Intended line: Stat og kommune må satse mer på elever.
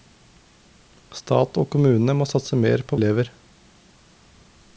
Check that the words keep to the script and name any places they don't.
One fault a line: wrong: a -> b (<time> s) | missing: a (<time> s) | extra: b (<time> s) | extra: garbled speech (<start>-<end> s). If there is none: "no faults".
no faults